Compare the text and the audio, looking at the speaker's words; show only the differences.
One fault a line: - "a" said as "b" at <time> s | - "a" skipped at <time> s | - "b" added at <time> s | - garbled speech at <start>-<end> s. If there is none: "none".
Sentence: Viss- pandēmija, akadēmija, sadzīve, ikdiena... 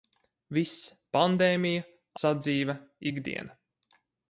- "akadēmija" skipped at 1.9 s